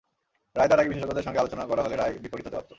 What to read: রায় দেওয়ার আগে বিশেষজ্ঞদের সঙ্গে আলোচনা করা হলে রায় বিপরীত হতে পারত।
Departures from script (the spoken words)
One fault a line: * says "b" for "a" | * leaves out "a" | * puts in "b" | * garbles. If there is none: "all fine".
all fine